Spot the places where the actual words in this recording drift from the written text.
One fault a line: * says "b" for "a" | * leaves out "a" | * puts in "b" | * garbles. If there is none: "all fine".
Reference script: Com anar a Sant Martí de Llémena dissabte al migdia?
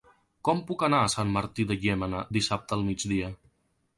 * puts in "puc"